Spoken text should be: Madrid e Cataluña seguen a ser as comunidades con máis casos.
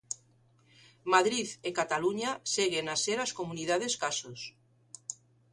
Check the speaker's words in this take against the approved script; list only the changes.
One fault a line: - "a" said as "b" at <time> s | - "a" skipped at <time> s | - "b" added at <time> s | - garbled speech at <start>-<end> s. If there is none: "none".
- "con máis" skipped at 3.9 s